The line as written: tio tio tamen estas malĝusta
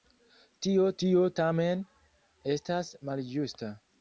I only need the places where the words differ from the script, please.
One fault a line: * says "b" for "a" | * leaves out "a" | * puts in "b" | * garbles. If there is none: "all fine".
all fine